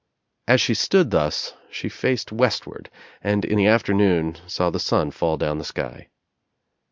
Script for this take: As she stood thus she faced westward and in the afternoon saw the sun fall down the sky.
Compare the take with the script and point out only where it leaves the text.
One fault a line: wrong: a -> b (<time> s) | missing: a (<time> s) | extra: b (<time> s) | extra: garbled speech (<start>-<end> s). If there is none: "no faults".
no faults